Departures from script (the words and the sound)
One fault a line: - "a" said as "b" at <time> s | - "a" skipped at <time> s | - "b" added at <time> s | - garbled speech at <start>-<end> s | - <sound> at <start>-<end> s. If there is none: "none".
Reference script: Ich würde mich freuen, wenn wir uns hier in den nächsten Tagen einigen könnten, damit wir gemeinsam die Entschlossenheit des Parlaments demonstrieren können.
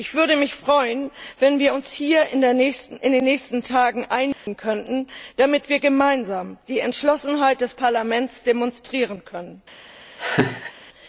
- dropout at 4.3-4.5 s
- laugh at 10.2-10.7 s